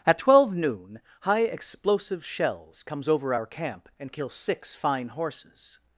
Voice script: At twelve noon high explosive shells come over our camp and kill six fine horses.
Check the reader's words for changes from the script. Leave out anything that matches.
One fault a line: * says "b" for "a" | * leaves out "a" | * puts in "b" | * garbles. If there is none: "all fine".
* says "comes" for "come"